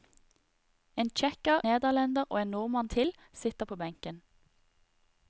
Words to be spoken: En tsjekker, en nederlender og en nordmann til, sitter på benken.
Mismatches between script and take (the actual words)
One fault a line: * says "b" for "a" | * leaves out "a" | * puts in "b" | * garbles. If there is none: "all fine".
* leaves out "en"